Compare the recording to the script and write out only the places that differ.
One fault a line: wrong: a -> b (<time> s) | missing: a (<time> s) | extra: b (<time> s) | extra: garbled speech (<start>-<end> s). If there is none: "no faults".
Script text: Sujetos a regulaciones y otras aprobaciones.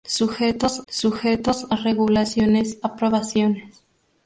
extra: sujetos (0.9 s)
missing: y otras (2.8 s)